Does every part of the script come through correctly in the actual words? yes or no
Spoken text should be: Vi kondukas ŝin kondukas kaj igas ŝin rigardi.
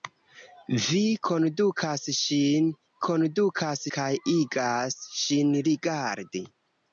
yes